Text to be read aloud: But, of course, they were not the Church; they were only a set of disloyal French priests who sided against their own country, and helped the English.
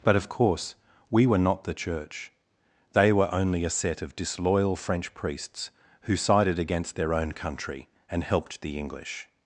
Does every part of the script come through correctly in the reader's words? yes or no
no